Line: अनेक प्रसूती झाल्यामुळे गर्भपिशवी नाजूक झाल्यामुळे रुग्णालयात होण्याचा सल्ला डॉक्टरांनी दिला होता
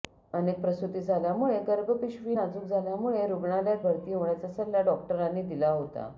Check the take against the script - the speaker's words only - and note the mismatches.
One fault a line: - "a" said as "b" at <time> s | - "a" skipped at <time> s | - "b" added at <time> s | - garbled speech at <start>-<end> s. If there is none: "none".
- "भरती" added at 3.8 s